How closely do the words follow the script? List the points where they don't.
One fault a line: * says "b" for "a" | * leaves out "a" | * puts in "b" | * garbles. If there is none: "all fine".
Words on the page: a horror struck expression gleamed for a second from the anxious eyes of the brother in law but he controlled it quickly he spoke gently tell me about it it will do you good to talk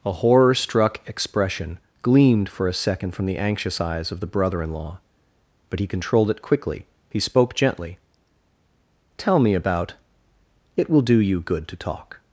* leaves out "it"